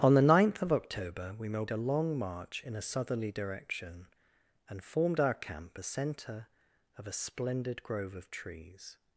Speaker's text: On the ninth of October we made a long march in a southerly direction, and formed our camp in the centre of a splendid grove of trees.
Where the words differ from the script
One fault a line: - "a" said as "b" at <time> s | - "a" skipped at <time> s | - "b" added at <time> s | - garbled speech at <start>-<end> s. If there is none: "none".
- "in" skipped at 5.8 s